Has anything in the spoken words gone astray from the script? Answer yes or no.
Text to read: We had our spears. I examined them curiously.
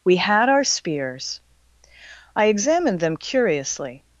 no